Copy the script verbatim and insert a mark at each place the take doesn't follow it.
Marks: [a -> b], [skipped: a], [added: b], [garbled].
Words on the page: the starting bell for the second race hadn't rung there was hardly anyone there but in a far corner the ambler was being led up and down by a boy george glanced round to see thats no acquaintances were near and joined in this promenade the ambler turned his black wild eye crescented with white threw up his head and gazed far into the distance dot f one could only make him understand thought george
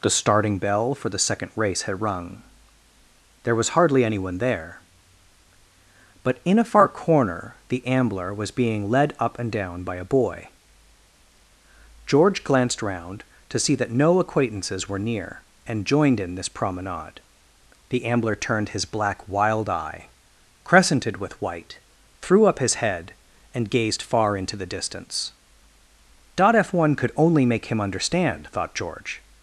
the starting bell for the second race [hadn't -> had] rung there was hardly anyone there but in a far corner the ambler was being led up and down by a boy george glanced round to see [thats -> that] no acquaintances were near and joined in this promenade the ambler turned his black wild eye crescented with white threw up his head and gazed far into the distance dot f one could only make him understand thought george